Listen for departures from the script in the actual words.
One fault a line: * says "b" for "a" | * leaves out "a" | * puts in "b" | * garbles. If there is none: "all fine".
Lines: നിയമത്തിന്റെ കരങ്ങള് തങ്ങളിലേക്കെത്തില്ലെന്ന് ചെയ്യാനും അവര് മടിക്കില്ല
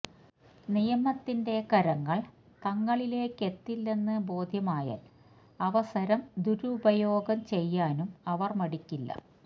* puts in "ബോധ്യമായാല് അവസരം ദുരുപയോഗം"